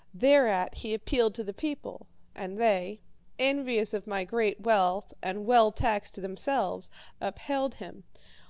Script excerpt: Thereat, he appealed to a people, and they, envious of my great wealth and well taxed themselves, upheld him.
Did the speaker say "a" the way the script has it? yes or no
no